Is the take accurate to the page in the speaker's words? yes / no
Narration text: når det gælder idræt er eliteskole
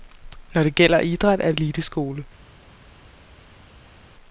yes